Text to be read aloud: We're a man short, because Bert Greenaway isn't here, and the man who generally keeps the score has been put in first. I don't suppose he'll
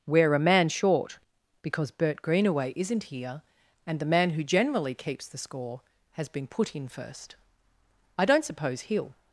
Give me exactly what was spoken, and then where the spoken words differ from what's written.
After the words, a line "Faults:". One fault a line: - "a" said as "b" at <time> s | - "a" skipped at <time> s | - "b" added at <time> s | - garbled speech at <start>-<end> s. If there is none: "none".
We're a man short, because Bert Greenaway isn't here, and the man who generally keeps the score has been put in first. I don't suppose he'll
Faults:
none